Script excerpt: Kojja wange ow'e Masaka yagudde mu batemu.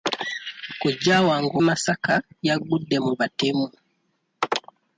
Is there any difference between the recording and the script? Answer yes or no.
yes